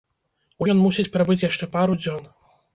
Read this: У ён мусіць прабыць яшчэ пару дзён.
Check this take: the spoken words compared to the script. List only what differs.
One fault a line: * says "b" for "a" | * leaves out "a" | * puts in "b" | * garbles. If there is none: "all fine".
all fine